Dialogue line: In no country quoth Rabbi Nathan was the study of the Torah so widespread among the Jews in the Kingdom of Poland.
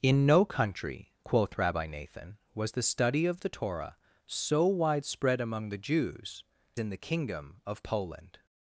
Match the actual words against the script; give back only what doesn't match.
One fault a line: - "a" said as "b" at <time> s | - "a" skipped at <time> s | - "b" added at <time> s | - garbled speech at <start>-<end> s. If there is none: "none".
none